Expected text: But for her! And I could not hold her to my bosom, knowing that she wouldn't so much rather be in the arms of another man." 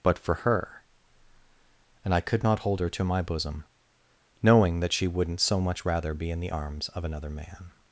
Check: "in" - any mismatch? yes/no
no